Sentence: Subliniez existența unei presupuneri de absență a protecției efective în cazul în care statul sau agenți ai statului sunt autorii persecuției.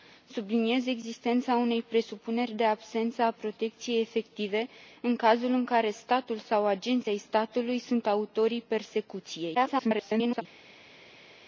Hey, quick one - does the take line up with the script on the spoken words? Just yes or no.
no